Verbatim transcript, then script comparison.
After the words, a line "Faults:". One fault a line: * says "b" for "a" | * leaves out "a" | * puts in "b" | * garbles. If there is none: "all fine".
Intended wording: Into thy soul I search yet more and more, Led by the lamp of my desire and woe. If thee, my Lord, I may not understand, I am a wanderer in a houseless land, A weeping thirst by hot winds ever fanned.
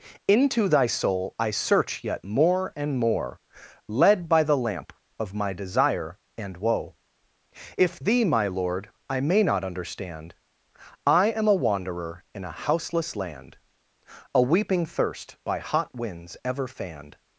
Into thy soul I search yet more and more, Led by the lamp of my desire and woe. If thee, my Lord, I may not understand, I am a wanderer in a houseless land, A weeping thirst by hot winds ever fanned.
Faults:
all fine